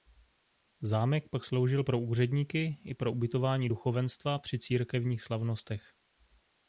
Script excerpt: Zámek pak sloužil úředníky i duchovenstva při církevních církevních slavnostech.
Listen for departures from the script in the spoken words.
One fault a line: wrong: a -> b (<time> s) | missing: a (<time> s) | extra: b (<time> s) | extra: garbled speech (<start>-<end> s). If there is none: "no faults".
extra: pro (1.8 s)
extra: pro ubytování (2.9 s)
missing: církevních (5.2 s)